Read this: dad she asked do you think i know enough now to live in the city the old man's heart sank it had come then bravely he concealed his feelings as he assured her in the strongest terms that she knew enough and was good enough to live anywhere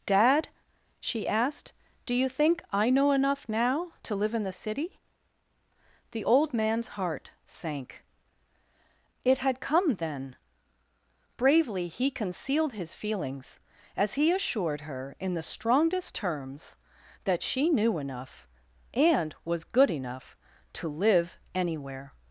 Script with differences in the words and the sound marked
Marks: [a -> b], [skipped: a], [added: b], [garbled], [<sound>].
dad she asked do you think i know enough now to live in the city the old man's heart sank it had come then bravely he concealed his feelings as he assured her in the strongest terms that she knew enough and was good enough to live anywhere